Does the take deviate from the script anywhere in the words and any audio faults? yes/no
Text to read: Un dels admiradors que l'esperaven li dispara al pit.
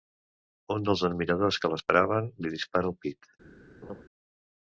yes